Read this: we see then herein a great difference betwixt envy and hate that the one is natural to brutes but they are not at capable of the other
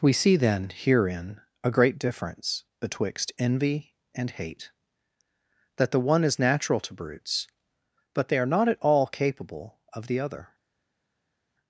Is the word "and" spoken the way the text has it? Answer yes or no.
yes